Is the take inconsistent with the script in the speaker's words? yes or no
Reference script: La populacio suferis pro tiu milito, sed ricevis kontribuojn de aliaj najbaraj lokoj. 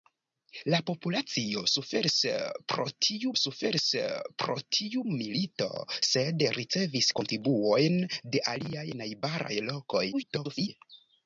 yes